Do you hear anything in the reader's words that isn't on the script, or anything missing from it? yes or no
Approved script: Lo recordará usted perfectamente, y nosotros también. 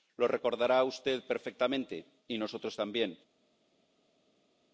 no